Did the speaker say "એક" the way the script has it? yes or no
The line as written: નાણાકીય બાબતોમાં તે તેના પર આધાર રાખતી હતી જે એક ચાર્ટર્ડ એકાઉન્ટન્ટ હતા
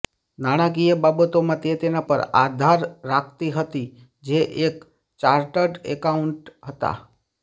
yes